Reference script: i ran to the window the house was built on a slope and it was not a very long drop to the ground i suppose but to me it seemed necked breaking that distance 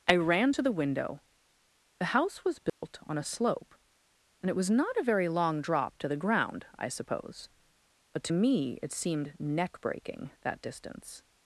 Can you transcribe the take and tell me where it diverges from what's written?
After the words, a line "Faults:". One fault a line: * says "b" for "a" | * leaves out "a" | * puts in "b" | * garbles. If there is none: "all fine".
i ran to the window the house was built on a slope and it was not a very long drop to the ground i suppose but to me it seemed neck breaking that distance
Faults:
* says "neck" for "necked"